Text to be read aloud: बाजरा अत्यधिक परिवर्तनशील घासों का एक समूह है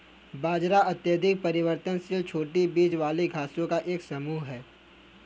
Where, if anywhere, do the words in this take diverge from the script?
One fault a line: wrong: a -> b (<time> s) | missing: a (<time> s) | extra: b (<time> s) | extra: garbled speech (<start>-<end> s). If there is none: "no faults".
extra: छोटी बीज वाली (2.2 s)